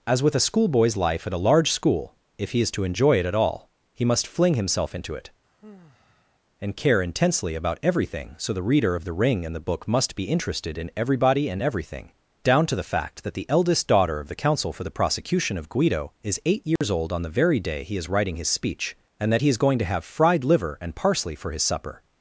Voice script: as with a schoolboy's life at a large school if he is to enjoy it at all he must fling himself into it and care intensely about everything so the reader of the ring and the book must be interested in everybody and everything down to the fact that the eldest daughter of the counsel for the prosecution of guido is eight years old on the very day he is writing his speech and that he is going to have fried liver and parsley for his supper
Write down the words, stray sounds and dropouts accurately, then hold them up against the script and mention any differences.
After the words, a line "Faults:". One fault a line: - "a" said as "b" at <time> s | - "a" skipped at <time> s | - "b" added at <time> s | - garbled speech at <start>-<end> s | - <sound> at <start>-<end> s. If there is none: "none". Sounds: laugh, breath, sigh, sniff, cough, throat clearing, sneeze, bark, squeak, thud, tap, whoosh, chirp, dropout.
as with a schoolboy's life at a large school if he is to enjoy it at all he must fling himself into it and care intensely about everything so the reader of the ring and the book must be interested in everybody and everything down to the fact that the eldest daughter of the counsel for the prosecution of guido is eight years old on the very day he is writing his speech and that he is going to have fried liver and parsley for his supper
Faults:
- sigh at 5.4-6.4 s
- dropout at 16.8-16.8 s